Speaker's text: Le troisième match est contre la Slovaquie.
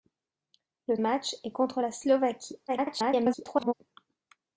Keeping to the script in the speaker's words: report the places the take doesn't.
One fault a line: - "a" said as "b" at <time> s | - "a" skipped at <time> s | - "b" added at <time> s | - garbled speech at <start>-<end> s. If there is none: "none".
- "troisième" skipped at 1.0 s
- garbled speech at 2.7-3.7 s